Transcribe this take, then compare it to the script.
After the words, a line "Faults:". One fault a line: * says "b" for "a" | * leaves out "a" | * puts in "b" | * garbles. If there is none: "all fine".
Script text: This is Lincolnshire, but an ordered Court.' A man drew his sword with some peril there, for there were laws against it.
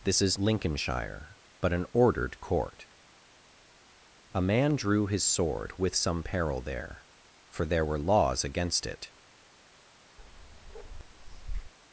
This is Lincolnshire, but an ordered Court.' A man drew his sword with some peril there, for there were laws against it.
Faults:
all fine